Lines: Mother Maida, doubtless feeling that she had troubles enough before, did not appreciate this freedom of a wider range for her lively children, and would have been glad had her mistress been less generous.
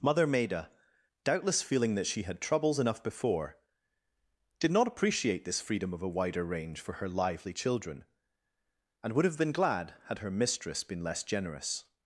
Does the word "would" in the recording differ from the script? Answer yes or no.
no